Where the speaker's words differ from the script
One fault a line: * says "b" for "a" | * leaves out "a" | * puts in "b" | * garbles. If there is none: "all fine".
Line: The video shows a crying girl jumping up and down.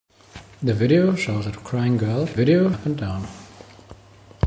* says "video" for "jumping"